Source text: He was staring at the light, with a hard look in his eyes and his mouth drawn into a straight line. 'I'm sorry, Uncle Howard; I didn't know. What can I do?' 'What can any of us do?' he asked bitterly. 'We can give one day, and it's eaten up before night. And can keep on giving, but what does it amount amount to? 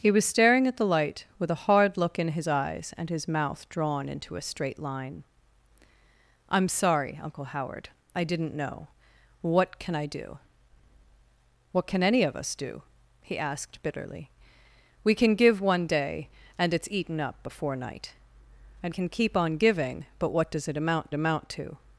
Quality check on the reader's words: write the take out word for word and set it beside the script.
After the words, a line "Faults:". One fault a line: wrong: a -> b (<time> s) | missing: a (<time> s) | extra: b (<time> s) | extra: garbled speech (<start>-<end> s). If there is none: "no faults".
He was staring at the light, with a hard look in his eyes and his mouth drawn into a straight line. 'I'm sorry, Uncle Howard; I didn't know. What can I do?' 'What can any of us do?' he asked bitterly. 'We can give one day, and it's eaten up before night. And can keep on giving, but what does it amount amount to?
Faults:
no faults